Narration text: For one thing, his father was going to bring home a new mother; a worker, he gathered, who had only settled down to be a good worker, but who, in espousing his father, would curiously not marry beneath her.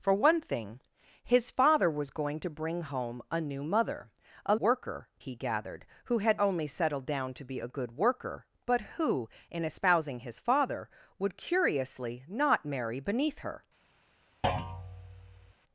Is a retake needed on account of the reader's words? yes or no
no